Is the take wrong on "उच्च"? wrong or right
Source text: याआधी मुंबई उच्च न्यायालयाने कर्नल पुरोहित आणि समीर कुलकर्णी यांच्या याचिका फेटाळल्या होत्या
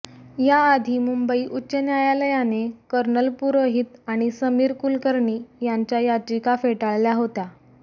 right